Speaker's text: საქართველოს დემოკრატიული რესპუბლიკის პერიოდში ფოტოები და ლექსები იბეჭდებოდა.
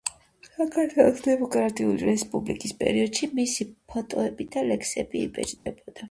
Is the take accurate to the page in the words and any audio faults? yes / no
no